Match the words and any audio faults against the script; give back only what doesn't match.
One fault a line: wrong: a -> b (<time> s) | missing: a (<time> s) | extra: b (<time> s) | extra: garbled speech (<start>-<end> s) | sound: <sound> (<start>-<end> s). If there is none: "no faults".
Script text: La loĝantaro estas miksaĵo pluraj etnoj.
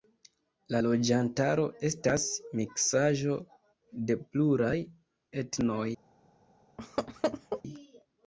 extra: de (4.1 s)
sound: laugh (6.8-7.6 s)